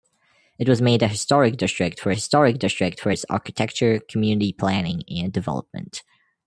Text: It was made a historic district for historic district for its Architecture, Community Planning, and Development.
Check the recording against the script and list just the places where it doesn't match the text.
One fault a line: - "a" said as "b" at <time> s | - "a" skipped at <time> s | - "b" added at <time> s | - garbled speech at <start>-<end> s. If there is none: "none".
none